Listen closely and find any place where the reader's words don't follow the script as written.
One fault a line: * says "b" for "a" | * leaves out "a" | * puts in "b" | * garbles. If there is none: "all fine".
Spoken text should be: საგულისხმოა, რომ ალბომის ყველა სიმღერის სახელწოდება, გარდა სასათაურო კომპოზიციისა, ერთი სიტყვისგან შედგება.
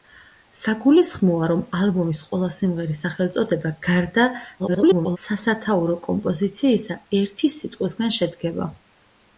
* garbles